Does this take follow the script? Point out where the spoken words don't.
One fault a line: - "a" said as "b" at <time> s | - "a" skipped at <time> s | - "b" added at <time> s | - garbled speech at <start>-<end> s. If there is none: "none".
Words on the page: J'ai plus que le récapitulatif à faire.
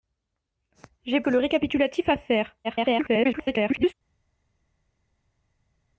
- "plus" skipped at 1.2 s
- garbled speech at 2.6-3.9 s